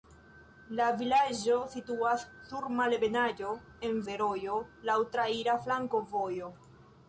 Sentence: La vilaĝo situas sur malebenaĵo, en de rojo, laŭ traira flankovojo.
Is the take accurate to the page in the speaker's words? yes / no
yes